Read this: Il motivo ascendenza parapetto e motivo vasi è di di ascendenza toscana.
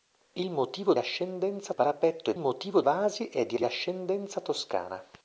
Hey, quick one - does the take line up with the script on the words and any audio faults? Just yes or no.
yes